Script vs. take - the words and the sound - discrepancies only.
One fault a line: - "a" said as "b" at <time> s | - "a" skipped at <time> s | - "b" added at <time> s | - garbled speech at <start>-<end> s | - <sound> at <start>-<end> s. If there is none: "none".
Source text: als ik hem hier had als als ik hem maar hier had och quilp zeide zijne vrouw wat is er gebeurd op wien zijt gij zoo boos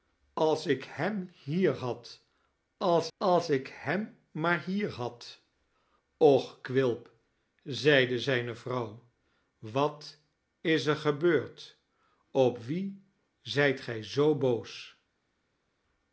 none